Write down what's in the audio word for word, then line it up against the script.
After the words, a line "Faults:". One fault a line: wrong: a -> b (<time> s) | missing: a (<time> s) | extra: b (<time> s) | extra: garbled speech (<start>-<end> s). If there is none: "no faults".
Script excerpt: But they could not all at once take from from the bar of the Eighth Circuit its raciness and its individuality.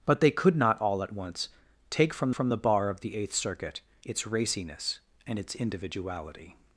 But they could not all at once take from from the bar of the Eighth Circuit its raciness and its individuality.
Faults:
no faults